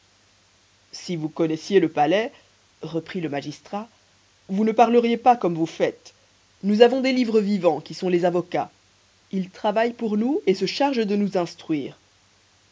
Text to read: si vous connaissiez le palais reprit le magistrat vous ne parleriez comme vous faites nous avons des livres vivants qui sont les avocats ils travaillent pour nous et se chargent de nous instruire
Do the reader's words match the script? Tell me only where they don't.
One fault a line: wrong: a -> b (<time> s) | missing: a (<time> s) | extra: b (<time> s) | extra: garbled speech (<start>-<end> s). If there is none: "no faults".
extra: pas (5.2 s)